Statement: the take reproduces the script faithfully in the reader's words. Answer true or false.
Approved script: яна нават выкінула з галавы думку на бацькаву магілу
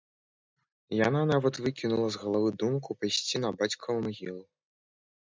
false